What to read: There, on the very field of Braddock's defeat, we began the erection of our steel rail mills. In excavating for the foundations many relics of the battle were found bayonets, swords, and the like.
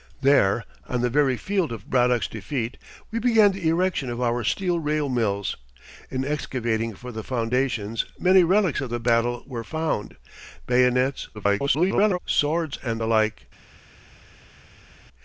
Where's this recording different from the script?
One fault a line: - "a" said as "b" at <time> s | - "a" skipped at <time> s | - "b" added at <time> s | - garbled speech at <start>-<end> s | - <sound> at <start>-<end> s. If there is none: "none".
- garbled speech at 11.3-12.2 s